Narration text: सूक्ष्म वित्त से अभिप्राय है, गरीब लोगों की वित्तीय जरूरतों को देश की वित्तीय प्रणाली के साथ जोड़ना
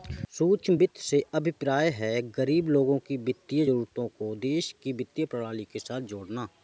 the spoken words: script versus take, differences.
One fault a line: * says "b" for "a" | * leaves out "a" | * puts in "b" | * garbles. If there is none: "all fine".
all fine